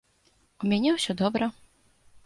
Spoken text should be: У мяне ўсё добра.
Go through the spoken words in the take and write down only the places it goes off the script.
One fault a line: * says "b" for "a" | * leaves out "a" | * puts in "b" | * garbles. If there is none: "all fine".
all fine